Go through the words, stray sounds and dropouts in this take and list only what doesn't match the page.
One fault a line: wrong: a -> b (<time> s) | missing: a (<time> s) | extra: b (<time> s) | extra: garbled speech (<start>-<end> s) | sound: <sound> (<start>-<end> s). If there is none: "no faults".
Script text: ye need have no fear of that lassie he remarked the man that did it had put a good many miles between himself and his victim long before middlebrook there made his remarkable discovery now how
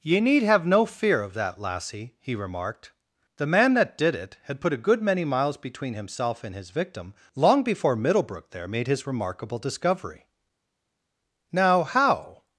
no faults